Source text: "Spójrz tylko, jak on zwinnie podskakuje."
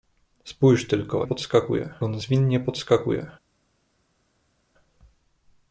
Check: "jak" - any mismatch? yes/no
yes